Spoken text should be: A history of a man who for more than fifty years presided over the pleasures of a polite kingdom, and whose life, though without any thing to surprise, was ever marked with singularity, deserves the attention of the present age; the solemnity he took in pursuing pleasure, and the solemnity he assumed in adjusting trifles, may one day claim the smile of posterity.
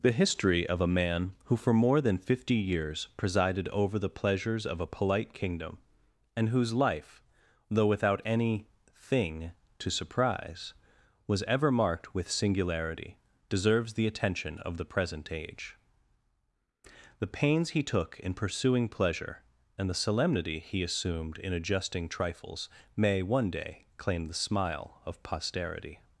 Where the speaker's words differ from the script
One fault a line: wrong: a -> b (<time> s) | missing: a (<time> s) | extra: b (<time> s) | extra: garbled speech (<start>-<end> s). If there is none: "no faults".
wrong: A -> The (0.0 s)
wrong: solemnity -> pains (17.4 s)